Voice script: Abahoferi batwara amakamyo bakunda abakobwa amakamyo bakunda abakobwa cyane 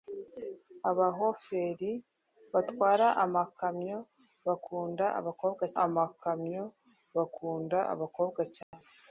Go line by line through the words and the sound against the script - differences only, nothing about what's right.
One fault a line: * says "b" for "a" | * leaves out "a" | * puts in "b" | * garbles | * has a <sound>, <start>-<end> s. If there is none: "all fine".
* has a dropout, 8.6-8.7 s